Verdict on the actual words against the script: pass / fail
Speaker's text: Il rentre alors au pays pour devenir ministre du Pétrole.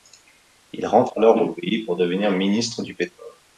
pass